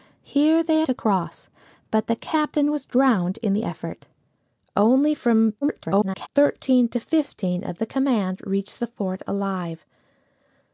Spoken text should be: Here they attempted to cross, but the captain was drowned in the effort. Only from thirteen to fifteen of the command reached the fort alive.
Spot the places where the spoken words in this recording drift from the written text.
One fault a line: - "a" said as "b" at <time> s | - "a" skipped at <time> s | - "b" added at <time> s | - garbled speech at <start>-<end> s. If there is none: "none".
- "attempted" skipped at 0.8 s
- garbled speech at 5.6-6.3 s